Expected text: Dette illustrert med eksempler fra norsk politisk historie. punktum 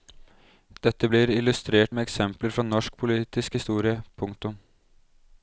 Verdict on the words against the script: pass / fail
fail